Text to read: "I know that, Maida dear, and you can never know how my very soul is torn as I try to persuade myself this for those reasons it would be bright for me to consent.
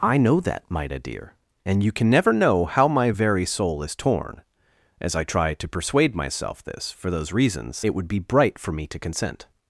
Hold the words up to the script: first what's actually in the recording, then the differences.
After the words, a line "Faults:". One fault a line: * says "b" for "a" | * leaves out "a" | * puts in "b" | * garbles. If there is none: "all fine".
"I know that, Maida dear, and you can never know how my very soul is torn as I try to persuade myself this for those reasons it would be bright for me to consent.
Faults:
all fine